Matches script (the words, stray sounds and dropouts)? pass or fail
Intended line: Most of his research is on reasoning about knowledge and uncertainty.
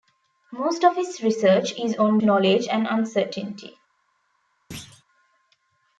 fail